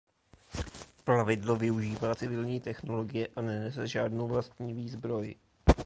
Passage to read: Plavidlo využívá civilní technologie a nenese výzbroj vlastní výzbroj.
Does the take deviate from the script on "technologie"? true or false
false